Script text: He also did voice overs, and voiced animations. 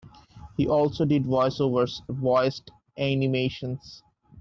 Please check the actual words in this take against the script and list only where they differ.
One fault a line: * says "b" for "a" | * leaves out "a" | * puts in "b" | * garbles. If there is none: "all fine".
* leaves out "and"